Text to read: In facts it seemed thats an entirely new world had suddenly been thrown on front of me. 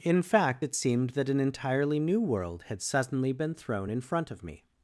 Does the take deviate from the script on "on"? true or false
true